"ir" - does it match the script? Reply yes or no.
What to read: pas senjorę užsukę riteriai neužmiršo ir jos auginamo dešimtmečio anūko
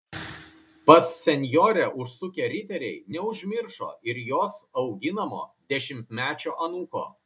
yes